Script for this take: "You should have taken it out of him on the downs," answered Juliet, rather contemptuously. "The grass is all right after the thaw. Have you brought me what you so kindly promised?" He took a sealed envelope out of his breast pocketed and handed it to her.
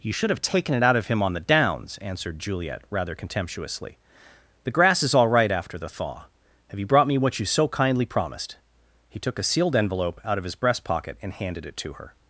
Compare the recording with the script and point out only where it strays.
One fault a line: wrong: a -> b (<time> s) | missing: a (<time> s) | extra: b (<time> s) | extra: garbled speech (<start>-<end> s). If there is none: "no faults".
wrong: pocketed -> pocket (10.8 s)